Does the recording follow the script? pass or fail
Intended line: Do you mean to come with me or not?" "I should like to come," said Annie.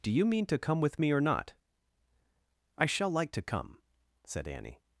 fail